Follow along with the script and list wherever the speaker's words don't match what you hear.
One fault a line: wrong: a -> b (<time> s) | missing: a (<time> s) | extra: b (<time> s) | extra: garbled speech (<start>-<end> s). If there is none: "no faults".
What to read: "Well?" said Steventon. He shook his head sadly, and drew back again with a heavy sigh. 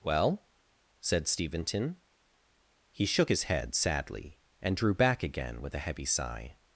no faults